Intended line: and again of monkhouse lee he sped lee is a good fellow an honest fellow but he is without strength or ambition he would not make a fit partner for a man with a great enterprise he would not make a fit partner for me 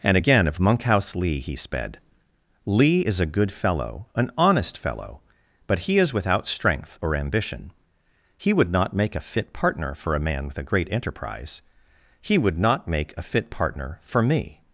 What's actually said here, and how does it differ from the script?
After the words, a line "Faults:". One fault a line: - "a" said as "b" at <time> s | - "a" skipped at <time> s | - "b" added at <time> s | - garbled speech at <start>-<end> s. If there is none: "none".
and again of monkhouse lee he sped lee is a good fellow an honest fellow but he is without strength or ambition he would not make a fit partner for a man with a great enterprise he would not make a fit partner for me
Faults:
none